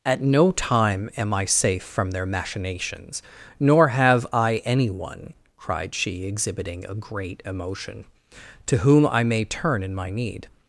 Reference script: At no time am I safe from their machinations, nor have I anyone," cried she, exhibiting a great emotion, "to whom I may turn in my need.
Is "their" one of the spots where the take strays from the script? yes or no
no